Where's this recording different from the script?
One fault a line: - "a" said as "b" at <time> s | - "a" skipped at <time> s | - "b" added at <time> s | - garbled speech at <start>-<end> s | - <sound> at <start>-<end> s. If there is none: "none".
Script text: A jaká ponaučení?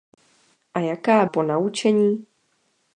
none